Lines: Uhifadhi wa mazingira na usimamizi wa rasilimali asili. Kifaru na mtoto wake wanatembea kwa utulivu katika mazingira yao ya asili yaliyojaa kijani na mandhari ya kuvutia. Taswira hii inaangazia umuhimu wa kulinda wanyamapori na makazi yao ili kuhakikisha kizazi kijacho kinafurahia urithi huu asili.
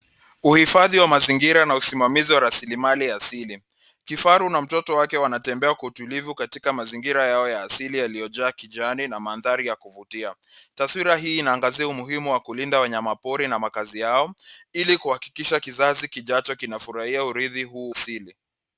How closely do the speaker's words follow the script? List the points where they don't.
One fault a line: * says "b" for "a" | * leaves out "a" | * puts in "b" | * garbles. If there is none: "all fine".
all fine